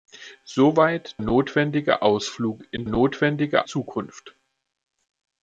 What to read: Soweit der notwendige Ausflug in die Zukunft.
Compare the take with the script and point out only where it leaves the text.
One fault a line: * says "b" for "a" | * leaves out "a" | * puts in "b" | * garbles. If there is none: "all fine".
* leaves out "der"
* says "notwendige" for "die"